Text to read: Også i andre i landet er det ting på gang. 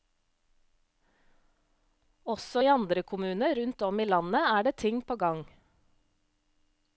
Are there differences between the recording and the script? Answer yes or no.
yes